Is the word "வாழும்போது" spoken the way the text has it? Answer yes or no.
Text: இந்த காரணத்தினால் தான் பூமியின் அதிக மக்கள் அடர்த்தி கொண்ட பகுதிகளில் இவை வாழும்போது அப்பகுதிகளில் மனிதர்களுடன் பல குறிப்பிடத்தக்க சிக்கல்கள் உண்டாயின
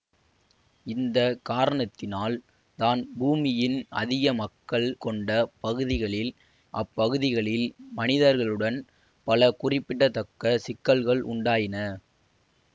no